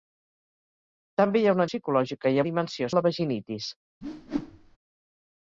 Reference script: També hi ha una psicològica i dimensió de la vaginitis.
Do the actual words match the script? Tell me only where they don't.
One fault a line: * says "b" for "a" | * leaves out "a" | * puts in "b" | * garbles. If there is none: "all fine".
all fine